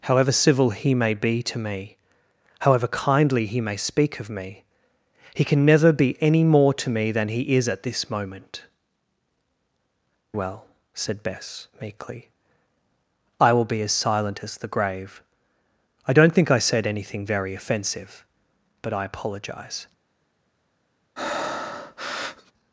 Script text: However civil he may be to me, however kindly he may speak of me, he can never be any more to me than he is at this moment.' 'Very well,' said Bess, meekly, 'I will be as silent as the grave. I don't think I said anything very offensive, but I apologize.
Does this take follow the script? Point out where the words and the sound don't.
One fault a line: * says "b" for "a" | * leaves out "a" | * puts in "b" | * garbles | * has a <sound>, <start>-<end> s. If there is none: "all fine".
* leaves out "Very"
* has a breath, 21.2-22.5 s